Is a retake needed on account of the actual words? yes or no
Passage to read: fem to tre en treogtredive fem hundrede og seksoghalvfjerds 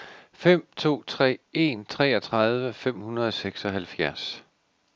no